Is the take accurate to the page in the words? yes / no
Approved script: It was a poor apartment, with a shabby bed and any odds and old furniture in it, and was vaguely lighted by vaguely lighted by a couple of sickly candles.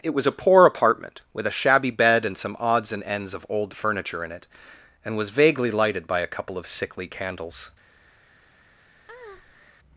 no